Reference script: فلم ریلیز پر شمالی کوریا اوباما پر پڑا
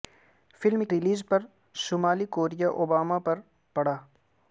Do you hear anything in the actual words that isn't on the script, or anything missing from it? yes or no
no